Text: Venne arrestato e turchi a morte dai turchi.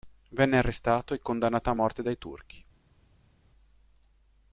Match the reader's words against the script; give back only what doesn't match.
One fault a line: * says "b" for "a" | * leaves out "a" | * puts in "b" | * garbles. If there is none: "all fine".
* says "condannato" for "turchi"